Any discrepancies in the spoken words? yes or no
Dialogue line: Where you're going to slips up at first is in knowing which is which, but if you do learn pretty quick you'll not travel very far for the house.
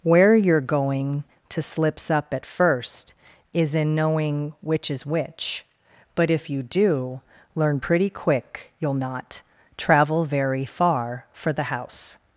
no